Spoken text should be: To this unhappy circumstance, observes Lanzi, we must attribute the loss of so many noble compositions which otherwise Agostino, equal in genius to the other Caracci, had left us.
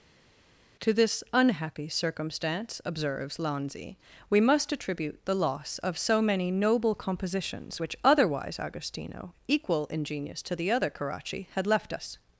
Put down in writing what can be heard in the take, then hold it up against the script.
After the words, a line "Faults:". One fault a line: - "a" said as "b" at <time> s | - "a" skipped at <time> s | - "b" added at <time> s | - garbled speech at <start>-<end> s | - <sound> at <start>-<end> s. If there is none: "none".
To this unhappy circumstance, observes Lanzi, we must attribute the loss of so many noble compositions which otherwise Agostino, equal in genius to the other Caracci, had left us.
Faults:
none